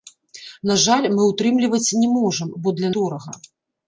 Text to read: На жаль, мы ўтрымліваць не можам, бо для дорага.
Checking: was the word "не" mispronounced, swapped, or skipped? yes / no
no